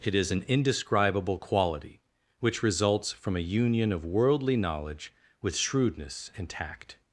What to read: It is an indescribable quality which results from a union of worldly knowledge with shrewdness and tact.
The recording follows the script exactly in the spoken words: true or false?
true